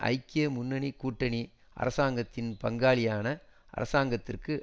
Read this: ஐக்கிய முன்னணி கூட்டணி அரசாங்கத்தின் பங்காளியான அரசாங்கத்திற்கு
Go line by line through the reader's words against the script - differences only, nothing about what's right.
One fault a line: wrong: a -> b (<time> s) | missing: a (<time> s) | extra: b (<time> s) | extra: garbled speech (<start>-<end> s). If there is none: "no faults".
no faults